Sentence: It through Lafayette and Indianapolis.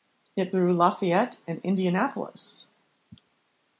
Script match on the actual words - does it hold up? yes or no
yes